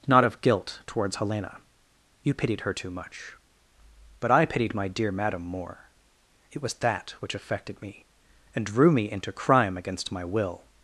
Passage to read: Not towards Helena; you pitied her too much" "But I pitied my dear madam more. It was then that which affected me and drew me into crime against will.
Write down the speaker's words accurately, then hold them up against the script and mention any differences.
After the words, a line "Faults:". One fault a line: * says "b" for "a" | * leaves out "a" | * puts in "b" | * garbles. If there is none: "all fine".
Not of guilt towards Helena; you pitied her too much" "But I pitied my dear madam more. It was that which affected me and drew me into crime against my will.
Faults:
* puts in "of guilt"
* leaves out "then"
* puts in "my"